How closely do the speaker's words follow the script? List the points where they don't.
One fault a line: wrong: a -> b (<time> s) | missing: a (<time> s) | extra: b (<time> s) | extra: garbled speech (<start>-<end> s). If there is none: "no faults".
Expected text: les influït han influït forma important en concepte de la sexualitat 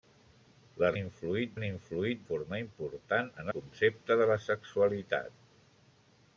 no faults